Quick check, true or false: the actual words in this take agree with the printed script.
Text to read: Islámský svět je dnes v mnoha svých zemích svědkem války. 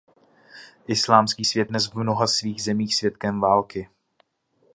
false